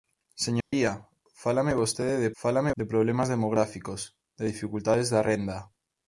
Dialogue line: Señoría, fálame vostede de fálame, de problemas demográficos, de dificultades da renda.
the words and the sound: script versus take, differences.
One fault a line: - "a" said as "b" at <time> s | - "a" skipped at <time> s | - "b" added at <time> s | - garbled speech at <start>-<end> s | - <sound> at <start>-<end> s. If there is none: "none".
- dropout at 0.6-0.7 s